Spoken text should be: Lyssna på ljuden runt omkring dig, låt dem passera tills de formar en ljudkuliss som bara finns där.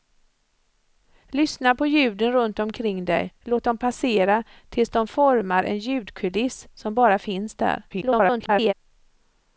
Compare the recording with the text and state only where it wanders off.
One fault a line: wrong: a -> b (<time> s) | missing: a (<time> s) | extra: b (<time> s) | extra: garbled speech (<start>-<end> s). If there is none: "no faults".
extra: garbled speech (7.9-8.7 s)